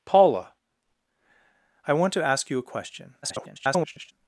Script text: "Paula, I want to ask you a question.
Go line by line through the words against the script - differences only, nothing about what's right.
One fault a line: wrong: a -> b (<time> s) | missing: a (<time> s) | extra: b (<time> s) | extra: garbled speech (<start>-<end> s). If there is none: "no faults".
extra: garbled speech (3.2-4.1 s)